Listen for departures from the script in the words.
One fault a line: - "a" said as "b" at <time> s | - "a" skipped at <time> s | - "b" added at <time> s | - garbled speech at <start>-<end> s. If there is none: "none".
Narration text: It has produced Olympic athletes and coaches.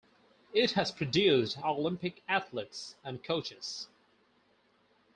none